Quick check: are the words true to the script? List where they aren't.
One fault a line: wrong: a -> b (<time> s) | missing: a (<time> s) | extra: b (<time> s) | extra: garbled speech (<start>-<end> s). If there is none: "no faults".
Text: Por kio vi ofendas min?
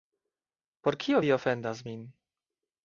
no faults